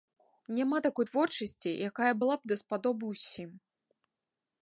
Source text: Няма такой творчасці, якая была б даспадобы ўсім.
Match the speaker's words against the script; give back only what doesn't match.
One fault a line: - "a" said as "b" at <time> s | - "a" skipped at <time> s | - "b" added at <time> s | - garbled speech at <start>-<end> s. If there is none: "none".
none